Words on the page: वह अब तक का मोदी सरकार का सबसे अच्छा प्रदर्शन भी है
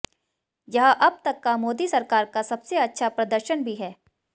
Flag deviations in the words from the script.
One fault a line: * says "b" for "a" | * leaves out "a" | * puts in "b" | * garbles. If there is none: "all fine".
* says "यह" for "वह"